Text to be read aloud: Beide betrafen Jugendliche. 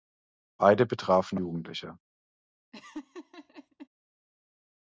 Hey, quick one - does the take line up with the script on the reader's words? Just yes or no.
yes